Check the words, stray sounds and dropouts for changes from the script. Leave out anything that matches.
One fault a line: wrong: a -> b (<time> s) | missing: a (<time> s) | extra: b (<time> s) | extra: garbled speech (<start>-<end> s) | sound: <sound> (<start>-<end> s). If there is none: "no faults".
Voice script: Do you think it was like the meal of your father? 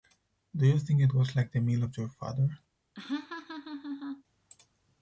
sound: laugh (2.9-4.2 s)